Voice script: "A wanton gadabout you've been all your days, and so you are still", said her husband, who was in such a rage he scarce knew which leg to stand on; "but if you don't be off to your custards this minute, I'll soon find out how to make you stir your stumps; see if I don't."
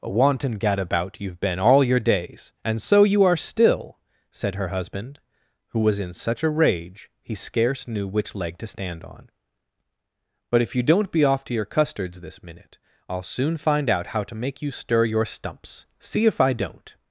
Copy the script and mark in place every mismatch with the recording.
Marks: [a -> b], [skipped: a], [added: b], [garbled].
"A wanton gadabout you've been all your days, and so you are still", said her husband, who was in such a rage he scarce knew which leg to stand on; "but if you don't be off to your custards this minute, I'll soon find out how to make you stir your stumps; see if I don't."